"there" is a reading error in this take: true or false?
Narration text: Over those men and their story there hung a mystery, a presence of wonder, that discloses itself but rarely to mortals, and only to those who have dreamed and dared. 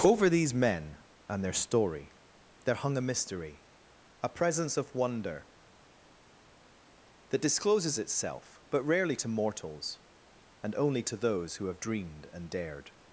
false